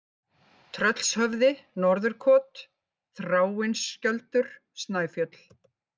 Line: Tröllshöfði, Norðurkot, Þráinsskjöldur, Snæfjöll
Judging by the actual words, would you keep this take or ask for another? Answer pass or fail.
pass